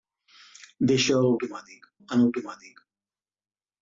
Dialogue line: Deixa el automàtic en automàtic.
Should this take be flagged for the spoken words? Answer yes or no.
no